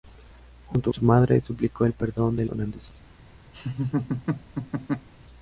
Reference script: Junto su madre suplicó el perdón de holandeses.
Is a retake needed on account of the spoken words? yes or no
no